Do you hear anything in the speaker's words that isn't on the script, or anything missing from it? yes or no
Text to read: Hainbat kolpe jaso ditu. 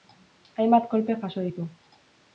no